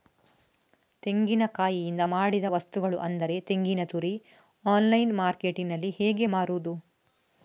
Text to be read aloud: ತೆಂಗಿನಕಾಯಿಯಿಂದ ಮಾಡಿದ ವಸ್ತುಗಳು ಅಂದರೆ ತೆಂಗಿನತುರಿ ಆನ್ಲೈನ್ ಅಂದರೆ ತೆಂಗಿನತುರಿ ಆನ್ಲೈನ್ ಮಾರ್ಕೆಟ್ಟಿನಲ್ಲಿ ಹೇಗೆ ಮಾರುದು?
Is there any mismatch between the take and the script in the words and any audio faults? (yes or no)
yes